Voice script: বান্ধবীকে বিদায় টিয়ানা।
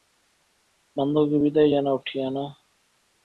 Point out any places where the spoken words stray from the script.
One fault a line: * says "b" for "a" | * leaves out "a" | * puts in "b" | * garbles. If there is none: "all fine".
* puts in "জানাও"